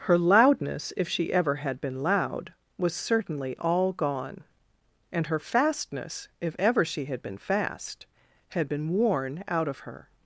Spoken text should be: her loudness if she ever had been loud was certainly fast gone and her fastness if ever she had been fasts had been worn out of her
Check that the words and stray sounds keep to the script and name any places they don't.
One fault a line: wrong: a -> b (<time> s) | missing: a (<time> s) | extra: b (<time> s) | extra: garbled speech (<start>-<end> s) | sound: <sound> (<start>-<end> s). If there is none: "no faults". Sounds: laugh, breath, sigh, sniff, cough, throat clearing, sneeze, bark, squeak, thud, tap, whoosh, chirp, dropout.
wrong: fast -> all (3.6 s)
wrong: fasts -> fast (7.4 s)